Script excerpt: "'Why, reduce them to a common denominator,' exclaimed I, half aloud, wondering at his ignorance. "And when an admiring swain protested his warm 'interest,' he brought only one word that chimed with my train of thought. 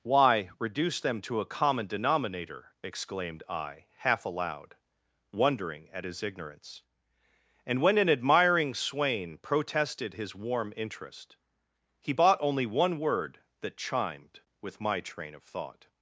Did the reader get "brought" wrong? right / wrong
wrong